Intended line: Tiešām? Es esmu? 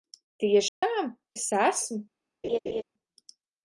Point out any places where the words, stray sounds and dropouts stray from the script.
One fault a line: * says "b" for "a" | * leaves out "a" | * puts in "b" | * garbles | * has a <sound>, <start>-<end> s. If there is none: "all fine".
* has a dropout, 0.7-0.8 s
* has a laugh, 2.4-2.8 s